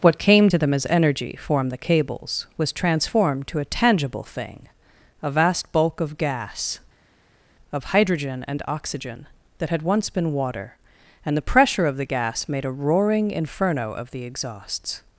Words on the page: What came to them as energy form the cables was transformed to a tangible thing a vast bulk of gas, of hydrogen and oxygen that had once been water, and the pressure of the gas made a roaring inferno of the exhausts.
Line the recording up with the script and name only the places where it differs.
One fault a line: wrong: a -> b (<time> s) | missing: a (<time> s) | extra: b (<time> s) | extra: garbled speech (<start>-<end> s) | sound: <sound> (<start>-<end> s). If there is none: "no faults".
no faults